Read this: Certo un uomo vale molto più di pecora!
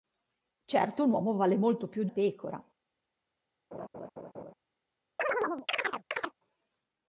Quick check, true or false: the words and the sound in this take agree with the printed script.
false